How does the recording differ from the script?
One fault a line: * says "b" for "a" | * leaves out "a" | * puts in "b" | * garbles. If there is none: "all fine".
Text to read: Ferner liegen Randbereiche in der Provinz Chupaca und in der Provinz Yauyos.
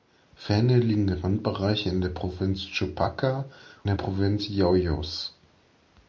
* leaves out "und in"